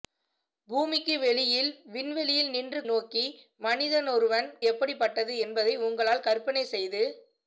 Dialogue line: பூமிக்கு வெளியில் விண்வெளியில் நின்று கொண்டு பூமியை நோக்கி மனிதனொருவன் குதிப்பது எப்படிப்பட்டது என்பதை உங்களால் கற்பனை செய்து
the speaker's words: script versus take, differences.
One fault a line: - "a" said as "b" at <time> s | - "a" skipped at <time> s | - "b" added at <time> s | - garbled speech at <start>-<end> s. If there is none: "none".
- "கொண்டு பூமியை" skipped at 2.8 s
- "குதிப்பது" skipped at 4.5 s